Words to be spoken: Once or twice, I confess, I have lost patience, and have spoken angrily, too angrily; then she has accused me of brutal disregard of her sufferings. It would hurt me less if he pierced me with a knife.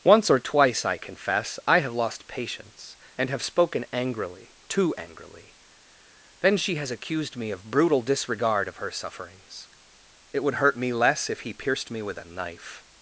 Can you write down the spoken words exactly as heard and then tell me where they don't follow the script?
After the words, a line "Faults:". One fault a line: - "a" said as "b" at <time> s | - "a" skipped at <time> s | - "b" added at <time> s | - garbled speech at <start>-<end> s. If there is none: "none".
Once or twice, I confess, I have lost patience, and have spoken angrily, too angrily; then she has accused me of brutal disregard of her sufferings. It would hurt me less if he pierced me with a knife.
Faults:
none